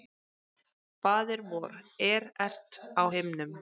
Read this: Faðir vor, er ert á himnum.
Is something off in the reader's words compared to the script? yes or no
no